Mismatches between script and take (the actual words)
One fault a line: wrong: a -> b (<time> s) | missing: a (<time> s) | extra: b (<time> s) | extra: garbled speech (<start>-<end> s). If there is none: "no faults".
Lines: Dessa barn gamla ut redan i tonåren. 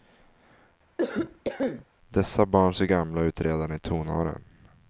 extra: ser (2.7 s)